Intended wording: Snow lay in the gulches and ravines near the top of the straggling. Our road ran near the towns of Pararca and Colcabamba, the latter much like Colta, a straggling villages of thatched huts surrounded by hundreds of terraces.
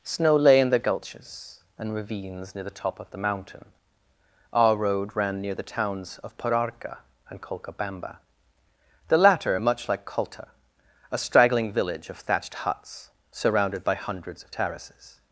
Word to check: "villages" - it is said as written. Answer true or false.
false